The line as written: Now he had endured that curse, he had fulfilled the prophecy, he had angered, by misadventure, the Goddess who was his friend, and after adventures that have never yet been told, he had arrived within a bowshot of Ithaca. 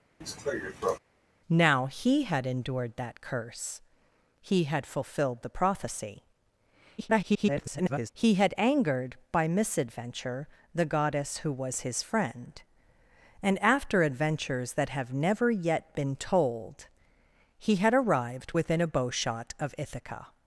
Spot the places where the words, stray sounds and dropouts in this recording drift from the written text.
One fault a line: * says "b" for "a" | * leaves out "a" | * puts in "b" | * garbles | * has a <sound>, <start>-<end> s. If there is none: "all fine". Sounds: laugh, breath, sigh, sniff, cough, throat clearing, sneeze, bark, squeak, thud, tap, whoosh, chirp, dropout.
* has a cough, 0.2-1.0 s
* garbles